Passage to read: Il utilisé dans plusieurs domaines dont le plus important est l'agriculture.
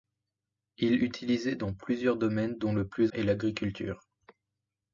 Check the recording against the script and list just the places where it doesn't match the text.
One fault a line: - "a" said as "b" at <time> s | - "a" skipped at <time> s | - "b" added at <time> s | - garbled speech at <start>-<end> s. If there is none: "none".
- "important" skipped at 3.1 s